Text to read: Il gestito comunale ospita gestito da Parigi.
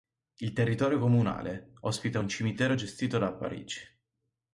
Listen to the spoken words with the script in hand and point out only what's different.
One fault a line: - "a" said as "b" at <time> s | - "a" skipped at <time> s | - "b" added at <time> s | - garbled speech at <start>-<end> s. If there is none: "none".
- "gestito" said as "territorio" at 0.5 s
- "un cimitero" added at 2.2 s